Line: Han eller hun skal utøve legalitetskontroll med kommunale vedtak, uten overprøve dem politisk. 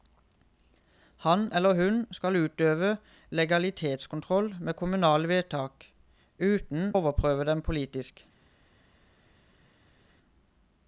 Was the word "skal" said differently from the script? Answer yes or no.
no